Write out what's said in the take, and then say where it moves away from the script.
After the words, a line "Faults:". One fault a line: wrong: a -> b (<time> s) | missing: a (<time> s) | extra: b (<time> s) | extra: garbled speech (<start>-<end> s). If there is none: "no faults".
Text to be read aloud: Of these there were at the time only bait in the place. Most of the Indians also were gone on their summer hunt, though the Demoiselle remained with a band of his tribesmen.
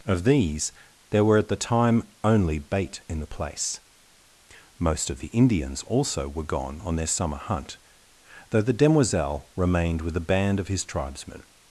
Of these there were at the time only bait in the place. Most of the Indians also were gone on their summer hunt, though the Demoiselle remained with a band of his tribesmen.
Faults:
no faults